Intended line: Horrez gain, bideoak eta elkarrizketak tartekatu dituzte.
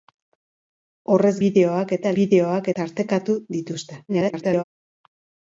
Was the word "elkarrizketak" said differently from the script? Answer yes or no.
yes